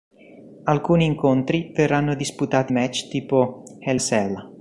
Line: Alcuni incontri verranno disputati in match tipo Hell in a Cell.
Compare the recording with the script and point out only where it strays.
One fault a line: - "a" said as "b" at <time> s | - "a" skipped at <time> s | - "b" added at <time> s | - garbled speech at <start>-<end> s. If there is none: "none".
- "in" skipped at 2.7 s
- "in" skipped at 4.0 s